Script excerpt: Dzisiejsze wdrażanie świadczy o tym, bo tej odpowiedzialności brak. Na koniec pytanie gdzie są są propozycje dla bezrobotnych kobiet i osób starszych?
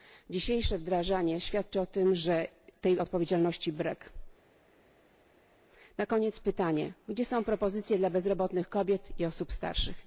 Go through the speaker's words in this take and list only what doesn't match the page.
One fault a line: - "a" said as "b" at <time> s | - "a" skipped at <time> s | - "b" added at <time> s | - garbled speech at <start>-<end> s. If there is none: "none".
- "bo" said as "że" at 2.1 s
- "są" skipped at 7.4 s